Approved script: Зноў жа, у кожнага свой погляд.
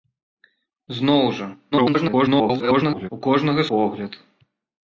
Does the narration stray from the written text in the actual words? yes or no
yes